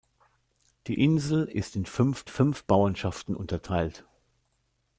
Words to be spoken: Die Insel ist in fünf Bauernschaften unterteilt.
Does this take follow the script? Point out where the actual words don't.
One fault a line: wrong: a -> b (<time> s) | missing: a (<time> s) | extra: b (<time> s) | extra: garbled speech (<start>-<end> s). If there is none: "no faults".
extra: fünf (2.3 s)